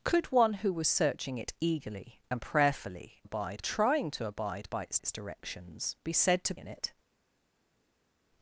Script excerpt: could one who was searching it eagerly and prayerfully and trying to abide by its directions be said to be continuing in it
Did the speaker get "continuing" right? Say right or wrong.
wrong